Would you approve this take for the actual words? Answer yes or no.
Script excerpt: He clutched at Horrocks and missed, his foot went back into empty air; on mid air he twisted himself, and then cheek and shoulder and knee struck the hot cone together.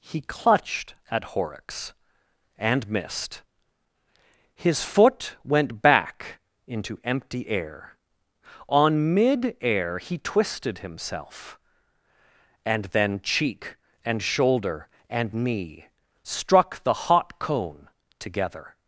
yes